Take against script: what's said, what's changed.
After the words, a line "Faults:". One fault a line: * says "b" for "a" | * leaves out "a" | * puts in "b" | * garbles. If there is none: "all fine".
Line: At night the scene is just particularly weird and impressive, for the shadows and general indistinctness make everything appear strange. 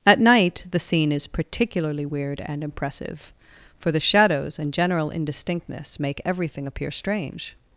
At night the scene is particularly weird and impressive, for the shadows and general indistinctness make everything appear strange.
Faults:
* leaves out "just"